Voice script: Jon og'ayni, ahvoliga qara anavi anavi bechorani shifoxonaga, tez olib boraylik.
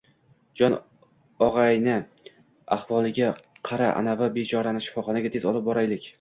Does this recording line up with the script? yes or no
no